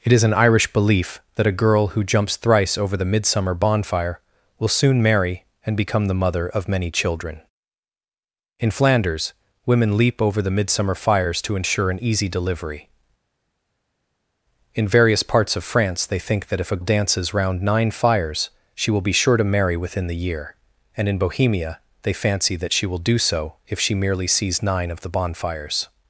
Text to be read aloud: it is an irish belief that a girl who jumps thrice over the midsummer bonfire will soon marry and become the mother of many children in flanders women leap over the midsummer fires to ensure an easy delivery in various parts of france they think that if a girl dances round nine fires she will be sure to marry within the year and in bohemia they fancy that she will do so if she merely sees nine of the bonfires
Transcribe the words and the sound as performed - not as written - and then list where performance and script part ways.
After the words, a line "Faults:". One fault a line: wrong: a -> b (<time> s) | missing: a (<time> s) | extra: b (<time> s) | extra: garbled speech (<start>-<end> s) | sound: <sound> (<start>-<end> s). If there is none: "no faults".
it is an irish belief that a girl who jumps thrice over the midsummer bonfire will soon marry and become the mother of many children in flanders women leap over the midsummer fires to ensure an easy delivery in various parts of france they think that if a dances round nine fires she will be sure to marry within the year and in bohemia they fancy that she will do so if she merely sees nine of the bonfires
Faults:
missing: girl (16.8 s)